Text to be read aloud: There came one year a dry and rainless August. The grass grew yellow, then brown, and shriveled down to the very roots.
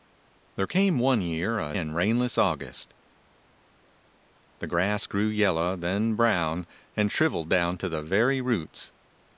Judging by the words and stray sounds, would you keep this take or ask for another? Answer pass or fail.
fail